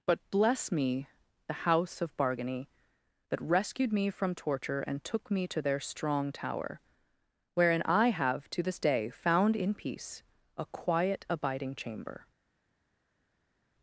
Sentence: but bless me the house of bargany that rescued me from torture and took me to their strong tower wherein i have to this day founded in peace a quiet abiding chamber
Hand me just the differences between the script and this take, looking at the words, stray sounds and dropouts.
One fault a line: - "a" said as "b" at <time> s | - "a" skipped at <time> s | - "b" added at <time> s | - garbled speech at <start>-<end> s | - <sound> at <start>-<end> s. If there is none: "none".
- "founded" said as "found" at 9.1 s